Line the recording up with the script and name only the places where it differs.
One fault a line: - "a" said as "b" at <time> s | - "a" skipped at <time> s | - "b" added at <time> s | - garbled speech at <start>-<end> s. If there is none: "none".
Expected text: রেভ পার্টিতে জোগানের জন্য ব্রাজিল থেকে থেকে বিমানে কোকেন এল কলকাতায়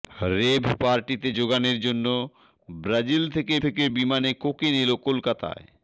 none